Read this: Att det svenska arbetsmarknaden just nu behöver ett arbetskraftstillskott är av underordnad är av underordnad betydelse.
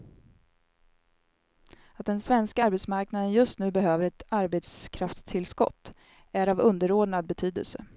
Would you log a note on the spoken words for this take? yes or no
yes